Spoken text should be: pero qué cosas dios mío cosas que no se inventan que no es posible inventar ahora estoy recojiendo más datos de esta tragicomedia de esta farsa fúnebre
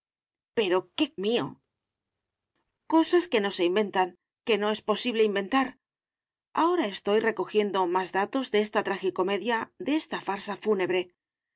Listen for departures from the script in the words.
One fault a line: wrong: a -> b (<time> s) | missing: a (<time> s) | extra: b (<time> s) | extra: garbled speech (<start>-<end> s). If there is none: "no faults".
missing: cosas dios (1.1 s)